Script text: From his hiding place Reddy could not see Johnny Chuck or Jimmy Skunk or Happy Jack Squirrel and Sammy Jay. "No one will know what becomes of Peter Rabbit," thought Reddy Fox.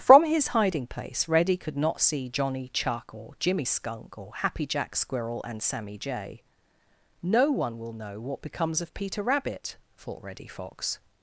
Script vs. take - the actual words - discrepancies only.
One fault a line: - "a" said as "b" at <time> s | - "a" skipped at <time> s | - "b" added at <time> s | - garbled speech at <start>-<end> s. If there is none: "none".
none